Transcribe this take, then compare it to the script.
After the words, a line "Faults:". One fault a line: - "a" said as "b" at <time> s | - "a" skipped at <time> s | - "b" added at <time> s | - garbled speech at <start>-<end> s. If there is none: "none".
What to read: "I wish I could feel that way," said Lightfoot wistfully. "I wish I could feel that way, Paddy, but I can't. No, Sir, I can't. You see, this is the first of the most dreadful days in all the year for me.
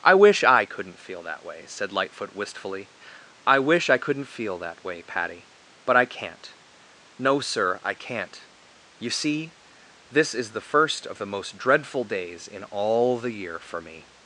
"I wish I couldn't feel that way," said Lightfoot wistfully. "I wish I couldn't feel that way, Paddy, but I can't. No, Sir, I can't. You see, this is the first of the most dreadful days in all the year for me.
Faults:
- "could" said as "couldn't" at 0.7 s
- "could" said as "couldn't" at 4.0 s